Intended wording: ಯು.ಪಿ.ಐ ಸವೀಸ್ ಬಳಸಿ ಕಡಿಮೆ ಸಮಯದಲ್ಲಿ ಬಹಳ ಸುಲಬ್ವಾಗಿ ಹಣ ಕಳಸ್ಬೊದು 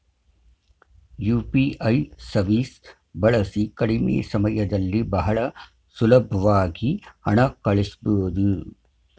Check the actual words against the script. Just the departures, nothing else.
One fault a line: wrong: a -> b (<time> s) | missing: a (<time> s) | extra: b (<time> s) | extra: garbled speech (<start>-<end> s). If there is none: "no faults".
no faults